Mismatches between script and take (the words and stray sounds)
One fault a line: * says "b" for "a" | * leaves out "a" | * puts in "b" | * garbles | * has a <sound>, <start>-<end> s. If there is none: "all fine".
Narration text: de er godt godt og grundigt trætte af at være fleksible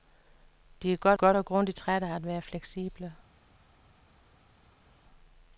all fine